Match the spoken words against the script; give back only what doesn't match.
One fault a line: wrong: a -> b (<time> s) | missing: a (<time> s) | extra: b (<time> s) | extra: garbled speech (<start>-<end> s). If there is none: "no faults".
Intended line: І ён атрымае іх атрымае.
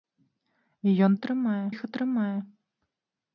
no faults